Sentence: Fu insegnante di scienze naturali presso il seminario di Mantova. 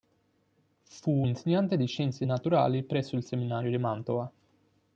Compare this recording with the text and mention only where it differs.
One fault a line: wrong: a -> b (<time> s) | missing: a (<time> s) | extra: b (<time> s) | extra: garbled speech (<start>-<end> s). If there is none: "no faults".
no faults